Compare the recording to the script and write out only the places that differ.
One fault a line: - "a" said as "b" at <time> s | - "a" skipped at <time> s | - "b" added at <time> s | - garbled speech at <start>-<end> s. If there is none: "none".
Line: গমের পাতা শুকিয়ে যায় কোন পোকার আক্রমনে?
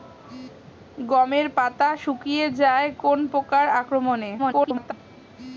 - garbled speech at 4.4-4.9 s